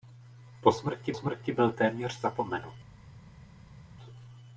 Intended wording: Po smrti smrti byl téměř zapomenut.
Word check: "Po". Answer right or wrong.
right